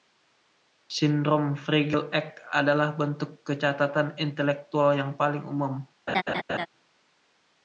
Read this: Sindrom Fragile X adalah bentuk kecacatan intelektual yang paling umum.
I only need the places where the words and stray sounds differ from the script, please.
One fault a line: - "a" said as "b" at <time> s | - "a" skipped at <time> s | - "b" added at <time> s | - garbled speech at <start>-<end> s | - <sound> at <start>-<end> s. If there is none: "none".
- laugh at 6.1-6.7 s